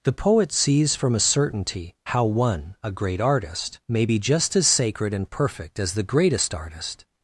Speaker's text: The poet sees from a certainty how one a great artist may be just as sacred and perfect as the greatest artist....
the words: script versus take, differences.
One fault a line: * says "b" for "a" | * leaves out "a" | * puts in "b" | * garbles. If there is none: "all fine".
all fine